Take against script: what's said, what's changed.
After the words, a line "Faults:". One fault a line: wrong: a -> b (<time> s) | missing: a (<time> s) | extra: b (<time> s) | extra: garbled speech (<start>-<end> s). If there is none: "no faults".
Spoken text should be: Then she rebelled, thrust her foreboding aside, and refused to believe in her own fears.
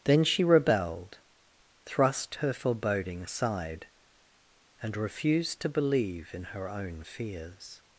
Then she rebelled, thrust her foreboding aside, and refused to believe in her own fears.
Faults:
no faults